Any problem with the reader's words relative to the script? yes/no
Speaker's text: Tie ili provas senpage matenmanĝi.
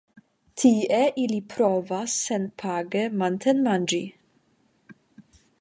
no